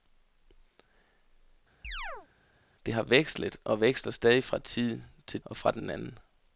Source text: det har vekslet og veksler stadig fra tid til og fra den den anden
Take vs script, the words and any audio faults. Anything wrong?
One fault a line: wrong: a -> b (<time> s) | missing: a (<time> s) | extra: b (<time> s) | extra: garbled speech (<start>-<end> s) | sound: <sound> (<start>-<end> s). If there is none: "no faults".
sound: chirp (1.8-2.3 s)